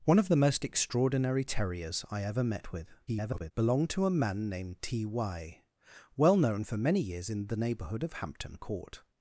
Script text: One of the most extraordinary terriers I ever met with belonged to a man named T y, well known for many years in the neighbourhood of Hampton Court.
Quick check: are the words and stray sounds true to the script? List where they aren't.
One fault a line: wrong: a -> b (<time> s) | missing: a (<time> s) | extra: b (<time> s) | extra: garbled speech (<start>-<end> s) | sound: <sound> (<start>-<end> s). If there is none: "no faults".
extra: garbled speech (3.1-3.5 s)